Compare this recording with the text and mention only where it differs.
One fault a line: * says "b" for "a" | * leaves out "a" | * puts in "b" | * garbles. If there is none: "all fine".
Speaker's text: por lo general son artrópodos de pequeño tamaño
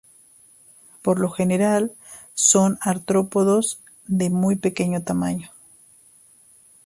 * puts in "muy"